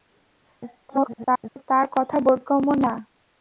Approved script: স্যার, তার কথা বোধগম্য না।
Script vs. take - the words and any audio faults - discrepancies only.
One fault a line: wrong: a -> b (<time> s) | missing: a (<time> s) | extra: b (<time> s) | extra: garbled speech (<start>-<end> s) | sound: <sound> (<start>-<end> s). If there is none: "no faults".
extra: garbled speech (0.9-1.6 s)